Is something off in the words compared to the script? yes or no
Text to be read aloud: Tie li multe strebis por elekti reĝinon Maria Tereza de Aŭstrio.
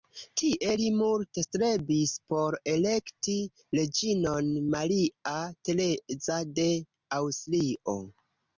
no